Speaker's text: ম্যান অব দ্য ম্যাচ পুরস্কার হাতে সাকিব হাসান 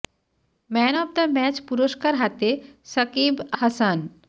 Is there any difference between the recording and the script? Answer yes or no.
no